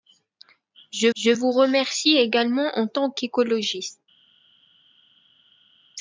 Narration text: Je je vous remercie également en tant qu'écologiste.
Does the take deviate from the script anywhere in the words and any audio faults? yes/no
no